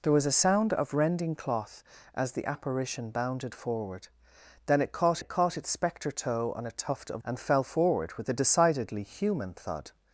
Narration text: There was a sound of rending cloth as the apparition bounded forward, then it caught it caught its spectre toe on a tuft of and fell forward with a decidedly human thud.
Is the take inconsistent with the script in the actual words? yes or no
no